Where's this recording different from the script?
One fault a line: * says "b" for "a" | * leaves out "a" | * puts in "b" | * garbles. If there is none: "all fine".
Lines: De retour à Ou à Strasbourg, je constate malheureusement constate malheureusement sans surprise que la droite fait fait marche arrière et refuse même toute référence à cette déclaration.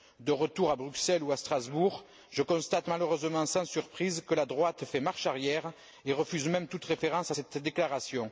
* puts in "Bruxelles"
* leaves out "constate malheureusement"
* leaves out "fait"